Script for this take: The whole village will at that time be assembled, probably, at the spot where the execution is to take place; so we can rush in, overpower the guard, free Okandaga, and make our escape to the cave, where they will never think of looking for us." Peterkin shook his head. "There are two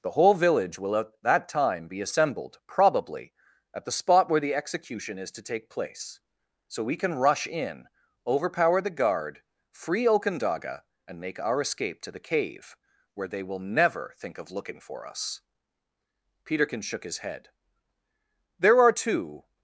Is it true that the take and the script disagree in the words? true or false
false